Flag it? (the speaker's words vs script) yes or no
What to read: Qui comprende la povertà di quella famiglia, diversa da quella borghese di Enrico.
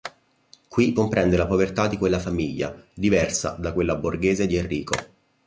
no